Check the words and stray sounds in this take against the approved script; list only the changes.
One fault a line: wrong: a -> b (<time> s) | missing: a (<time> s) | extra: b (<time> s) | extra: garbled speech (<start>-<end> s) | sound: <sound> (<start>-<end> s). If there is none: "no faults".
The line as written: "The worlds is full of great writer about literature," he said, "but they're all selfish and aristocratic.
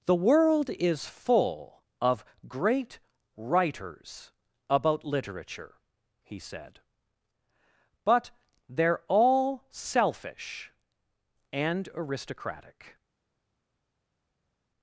wrong: worlds -> world (0.1 s)
wrong: writer -> writers (3.4 s)